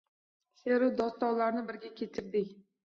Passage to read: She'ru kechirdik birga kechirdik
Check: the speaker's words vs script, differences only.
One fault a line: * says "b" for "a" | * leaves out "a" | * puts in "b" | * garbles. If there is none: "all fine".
* says "dostonlarni" for "kechirdik"